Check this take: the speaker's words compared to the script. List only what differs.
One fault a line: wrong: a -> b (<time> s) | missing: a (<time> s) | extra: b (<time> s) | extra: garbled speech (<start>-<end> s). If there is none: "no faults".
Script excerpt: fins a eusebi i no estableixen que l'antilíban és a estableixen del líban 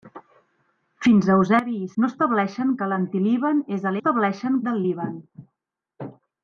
no faults